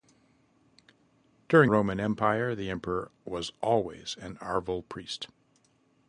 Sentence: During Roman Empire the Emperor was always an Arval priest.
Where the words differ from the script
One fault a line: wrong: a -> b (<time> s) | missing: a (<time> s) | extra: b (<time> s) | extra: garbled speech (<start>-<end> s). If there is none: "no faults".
no faults